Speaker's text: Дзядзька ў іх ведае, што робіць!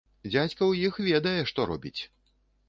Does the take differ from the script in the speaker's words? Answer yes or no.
no